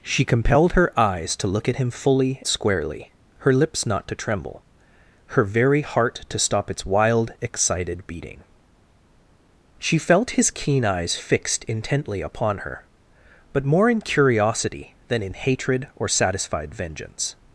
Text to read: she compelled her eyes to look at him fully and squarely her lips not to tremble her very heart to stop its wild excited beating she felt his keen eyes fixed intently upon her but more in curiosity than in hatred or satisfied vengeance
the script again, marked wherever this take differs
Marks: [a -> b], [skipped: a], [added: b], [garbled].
she compelled her eyes to look at him fully [skipped: and] squarely her lips not to tremble her very heart to stop its wild excited beating she felt his keen eyes fixed intently upon her but more in curiosity than in hatred or satisfied vengeance